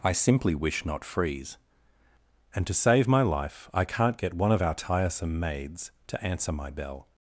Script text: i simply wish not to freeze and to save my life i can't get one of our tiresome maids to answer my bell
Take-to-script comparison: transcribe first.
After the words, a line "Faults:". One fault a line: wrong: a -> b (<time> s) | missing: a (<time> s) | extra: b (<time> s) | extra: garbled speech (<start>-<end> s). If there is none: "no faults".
i simply wish not freeze and to save my life i can't get one of our tiresome maids to answer my bell
Faults:
missing: to (1.1 s)